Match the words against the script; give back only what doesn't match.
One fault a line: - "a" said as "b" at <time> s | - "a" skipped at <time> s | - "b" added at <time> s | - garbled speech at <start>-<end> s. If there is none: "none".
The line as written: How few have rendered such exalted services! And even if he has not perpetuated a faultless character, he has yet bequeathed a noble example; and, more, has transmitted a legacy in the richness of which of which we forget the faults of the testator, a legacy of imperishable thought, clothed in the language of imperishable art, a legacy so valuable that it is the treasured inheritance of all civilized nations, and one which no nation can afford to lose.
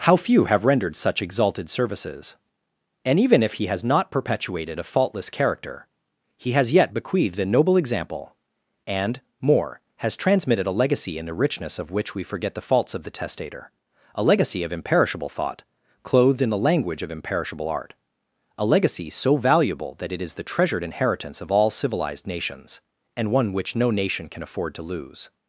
- "of which" skipped at 12.2 s